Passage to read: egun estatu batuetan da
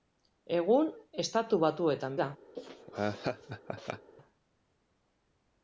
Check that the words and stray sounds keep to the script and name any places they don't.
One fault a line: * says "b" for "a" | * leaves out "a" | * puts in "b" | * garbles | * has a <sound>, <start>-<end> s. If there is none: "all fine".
* has a laugh, 2.5-4.1 s